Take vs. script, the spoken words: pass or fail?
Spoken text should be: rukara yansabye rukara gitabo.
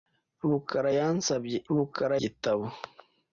pass